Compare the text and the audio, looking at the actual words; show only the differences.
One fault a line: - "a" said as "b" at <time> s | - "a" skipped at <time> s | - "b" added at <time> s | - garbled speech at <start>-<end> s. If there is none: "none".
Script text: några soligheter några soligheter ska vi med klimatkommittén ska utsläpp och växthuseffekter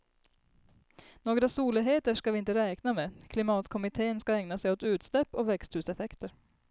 - "några soligheter ska vi" said as "ska vi inte räkna" at 2.1 s
- "ägna sig åt" added at 4.3 s